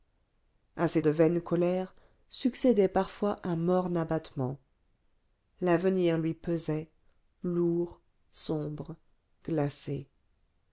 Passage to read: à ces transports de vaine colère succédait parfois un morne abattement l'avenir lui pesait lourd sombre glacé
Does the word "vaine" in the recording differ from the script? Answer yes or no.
no